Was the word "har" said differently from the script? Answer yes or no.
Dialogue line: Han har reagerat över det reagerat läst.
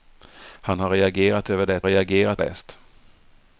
no